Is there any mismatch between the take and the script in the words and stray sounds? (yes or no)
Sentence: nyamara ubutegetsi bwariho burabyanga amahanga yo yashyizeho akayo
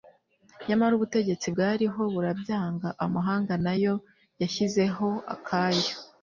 yes